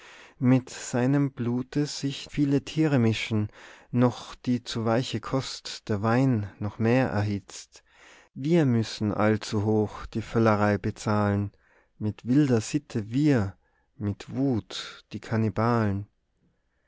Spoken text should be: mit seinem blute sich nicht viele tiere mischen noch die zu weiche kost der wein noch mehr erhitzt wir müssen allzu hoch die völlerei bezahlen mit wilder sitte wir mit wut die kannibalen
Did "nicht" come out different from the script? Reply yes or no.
yes